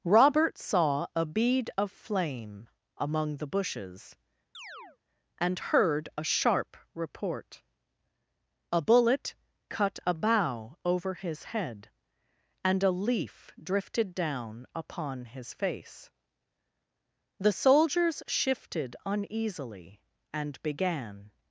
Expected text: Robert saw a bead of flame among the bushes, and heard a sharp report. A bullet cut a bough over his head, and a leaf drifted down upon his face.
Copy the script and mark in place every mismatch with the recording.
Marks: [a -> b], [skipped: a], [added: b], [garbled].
Robert saw a bead of flame among the bushes, and heard a sharp report. A bullet cut a bough over his head, and a leaf drifted down upon his face. [added: The soldiers shifted uneasily and began]